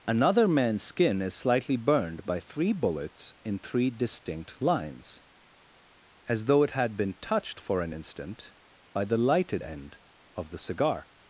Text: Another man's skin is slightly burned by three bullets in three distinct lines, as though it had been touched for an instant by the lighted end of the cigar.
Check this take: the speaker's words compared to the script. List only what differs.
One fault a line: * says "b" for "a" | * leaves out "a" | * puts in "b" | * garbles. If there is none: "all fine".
all fine